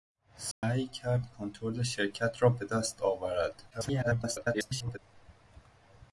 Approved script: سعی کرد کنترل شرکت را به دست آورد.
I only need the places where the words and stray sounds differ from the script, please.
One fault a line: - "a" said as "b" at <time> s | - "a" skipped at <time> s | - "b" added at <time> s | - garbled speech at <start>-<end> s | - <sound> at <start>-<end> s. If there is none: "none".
- dropout at 0.5-0.6 s
- garbled speech at 3.7-5.0 s